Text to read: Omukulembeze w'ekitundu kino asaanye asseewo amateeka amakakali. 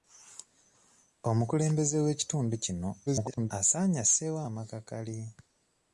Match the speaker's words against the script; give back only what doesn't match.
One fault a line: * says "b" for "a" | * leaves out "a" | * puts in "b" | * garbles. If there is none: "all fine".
* garbles
* leaves out "amateeka"